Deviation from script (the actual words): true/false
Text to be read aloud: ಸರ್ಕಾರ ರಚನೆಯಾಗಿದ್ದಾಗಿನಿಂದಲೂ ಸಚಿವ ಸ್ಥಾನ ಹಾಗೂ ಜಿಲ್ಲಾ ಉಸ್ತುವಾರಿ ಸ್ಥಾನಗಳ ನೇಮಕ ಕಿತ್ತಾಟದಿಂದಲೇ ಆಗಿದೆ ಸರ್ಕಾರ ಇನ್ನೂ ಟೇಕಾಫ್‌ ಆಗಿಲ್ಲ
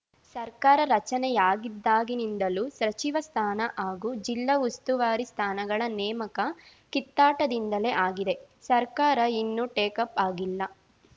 false